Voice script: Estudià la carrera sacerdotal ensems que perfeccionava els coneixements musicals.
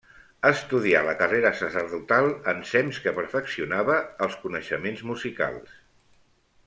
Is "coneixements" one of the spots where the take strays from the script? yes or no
no